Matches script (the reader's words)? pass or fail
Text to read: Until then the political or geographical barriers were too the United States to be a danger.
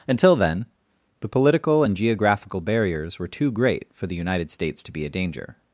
fail